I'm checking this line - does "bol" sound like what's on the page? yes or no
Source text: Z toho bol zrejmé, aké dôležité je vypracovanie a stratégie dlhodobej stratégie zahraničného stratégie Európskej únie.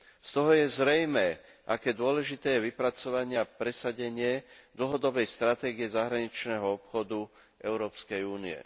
no